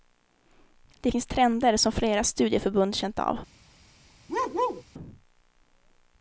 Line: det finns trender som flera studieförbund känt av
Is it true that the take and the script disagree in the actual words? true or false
false